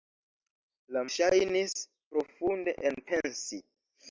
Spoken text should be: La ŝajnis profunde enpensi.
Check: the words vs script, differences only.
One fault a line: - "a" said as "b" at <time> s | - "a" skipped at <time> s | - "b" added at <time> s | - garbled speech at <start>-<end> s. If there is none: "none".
none